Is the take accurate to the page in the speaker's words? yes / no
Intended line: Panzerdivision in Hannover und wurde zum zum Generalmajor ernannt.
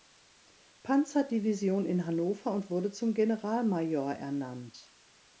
no